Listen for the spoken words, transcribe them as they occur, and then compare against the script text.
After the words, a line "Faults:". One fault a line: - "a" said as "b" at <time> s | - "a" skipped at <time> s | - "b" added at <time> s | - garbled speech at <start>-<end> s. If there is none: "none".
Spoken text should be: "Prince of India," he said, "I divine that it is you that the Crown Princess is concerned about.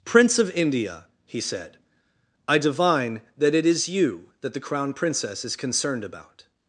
"Prince of India," he said, "I divine that it is you that the Crown Princess is concerned about.
Faults:
none